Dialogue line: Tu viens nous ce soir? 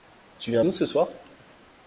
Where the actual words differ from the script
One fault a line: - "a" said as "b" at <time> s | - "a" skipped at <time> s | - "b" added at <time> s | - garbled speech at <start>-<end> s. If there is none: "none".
none